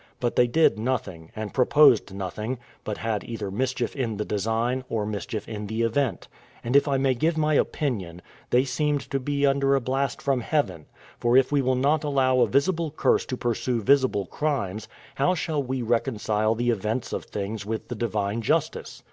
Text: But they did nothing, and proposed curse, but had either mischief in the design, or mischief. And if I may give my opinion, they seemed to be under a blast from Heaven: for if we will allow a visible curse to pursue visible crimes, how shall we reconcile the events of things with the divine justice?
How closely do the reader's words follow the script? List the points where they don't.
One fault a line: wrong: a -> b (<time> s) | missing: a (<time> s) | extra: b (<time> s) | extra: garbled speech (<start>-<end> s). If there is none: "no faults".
wrong: curse -> nothing (2.1 s)
extra: in the event (5.5 s)
extra: not (11.8 s)